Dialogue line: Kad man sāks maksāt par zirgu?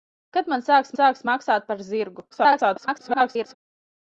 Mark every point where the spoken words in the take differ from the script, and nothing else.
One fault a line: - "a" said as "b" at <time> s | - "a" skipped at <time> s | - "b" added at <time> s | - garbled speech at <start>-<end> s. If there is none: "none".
- "sāks" added at 1.0 s
- garbled speech at 2.3-3.5 s